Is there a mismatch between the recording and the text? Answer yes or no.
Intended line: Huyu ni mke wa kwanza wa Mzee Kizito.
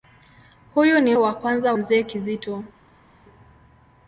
yes